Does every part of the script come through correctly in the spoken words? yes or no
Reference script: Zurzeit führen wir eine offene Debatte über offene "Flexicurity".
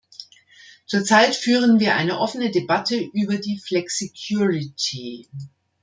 no